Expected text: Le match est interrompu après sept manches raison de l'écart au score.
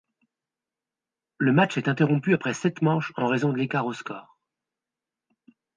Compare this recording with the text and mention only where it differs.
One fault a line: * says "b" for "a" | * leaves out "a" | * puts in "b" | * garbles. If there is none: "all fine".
* puts in "en"